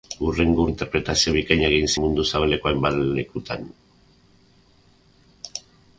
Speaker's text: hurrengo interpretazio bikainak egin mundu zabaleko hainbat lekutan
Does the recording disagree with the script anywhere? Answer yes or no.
no